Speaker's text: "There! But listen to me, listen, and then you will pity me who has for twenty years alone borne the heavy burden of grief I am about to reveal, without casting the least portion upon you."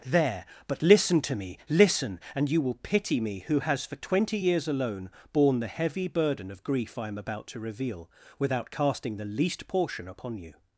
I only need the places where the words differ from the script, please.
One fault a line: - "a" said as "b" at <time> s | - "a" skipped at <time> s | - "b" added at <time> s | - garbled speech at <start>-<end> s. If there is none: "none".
- "then" skipped at 2.5 s